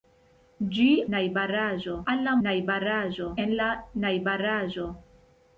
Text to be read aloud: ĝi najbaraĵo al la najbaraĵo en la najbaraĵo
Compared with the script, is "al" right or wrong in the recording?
right